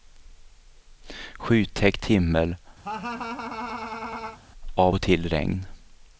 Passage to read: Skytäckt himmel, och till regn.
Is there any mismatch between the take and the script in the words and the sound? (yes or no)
yes